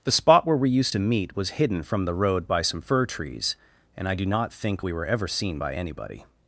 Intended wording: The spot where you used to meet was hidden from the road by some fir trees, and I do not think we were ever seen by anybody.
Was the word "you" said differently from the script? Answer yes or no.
yes